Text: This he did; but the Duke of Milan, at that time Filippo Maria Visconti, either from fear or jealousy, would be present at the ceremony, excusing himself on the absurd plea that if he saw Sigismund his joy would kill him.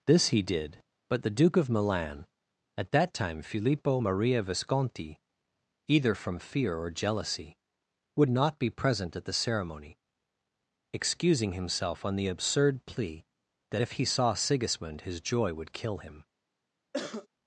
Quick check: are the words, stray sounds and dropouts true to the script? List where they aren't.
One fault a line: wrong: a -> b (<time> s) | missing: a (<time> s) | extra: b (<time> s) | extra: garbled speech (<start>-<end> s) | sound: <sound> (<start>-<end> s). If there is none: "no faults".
extra: not (8.3 s)
sound: cough (16.9-17.3 s)